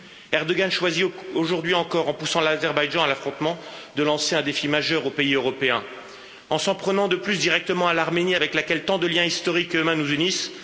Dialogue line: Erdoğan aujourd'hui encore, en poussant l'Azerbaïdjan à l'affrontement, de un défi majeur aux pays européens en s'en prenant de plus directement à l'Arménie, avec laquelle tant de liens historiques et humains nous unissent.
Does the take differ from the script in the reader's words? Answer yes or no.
yes